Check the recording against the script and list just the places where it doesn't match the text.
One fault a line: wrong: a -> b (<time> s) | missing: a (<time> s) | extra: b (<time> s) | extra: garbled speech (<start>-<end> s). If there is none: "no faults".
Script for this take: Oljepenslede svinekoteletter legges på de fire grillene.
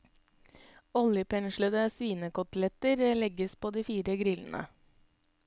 no faults